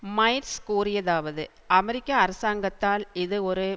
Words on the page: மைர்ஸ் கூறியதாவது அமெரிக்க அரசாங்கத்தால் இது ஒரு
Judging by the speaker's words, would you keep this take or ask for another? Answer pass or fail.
pass